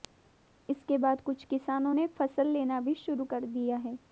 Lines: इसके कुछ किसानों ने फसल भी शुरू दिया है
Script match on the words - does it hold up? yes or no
no